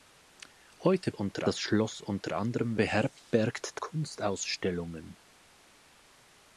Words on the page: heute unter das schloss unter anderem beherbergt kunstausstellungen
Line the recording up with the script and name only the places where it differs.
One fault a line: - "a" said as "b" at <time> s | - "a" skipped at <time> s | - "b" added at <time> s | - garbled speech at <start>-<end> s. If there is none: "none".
none